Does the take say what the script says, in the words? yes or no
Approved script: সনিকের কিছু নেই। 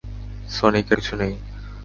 yes